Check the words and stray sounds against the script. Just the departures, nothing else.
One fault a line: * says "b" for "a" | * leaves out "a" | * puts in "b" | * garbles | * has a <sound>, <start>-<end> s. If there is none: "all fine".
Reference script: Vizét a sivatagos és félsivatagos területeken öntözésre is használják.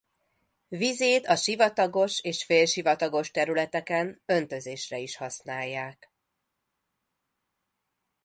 all fine